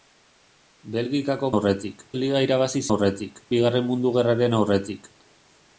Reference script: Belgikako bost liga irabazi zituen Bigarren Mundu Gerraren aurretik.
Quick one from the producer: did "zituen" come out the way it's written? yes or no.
no